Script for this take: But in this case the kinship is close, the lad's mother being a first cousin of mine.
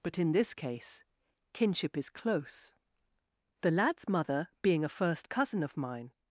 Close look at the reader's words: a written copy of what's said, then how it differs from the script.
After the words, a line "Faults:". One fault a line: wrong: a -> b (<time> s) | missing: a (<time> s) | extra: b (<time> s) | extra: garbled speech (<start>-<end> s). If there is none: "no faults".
But in this case kinship is close, the lad's mother being a first cousin of mine.
Faults:
missing: the (1.0 s)